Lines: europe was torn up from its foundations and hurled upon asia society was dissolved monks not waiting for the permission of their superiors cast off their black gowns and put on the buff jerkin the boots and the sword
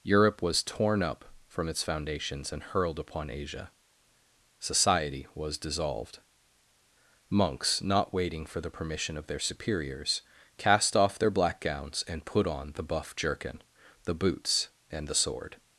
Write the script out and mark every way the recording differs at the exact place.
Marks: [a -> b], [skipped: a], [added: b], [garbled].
europe was torn up from its foundations and hurled upon asia society was dissolved monks not waiting for the permission of their superiors cast off their black gowns and put on the buff jerkin the boots and the sword